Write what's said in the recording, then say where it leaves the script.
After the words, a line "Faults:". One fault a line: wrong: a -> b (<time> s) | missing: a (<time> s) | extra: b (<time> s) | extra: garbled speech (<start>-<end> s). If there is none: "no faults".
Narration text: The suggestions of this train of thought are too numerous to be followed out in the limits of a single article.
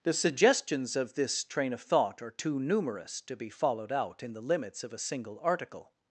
The suggestions of this train of thought are too numerous to be followed out in the limits of a single article.
Faults:
no faults